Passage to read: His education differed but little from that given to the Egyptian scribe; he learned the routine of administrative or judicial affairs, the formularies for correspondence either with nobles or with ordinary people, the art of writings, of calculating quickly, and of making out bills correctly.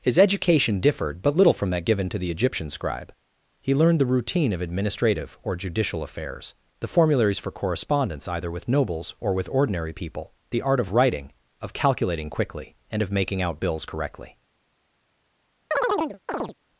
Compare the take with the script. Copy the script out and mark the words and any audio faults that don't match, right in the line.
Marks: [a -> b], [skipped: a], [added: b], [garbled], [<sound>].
His education differed but little from that given to the Egyptian scribe; he learned the routine of administrative or judicial affairs, the formularies for correspondence either with nobles or with ordinary people, the art of [writings, -> writing] of calculating quickly, and of making out bills correctly. [chirp]